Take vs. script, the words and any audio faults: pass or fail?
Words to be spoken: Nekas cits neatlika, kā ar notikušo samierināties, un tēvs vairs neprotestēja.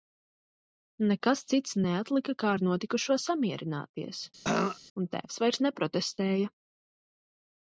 fail